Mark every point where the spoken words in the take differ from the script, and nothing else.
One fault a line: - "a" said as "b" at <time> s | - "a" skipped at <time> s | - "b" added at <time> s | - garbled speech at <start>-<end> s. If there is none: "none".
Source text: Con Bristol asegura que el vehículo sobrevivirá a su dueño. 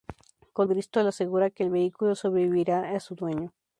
none